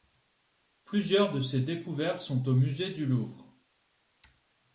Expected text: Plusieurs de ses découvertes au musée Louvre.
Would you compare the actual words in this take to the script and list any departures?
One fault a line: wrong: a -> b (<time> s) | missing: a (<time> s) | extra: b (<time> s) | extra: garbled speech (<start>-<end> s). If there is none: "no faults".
extra: sont (2.2 s)
extra: du (2.9 s)